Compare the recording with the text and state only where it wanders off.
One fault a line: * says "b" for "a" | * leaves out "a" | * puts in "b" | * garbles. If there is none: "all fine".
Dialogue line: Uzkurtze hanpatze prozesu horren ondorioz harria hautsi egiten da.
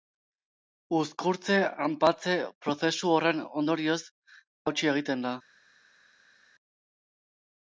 * leaves out "harria"